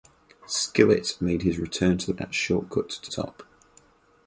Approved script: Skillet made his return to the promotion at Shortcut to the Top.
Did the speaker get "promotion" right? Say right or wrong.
wrong